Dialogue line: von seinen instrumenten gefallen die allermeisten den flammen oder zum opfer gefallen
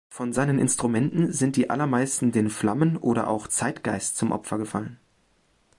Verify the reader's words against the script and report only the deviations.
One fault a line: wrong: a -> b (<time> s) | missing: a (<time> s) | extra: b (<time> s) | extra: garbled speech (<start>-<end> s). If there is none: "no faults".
wrong: gefallen -> sind (1.3 s)
extra: auch zeitgeist (3.3 s)